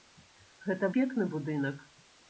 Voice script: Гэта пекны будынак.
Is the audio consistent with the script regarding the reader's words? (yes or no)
yes